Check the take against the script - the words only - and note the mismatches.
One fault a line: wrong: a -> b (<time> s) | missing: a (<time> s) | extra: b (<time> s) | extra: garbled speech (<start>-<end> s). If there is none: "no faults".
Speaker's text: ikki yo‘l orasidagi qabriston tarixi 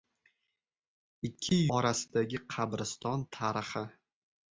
missing: yo‘l (1.6 s)